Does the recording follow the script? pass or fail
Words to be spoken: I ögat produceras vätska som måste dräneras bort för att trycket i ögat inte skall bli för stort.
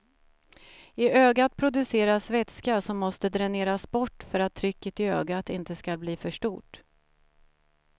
pass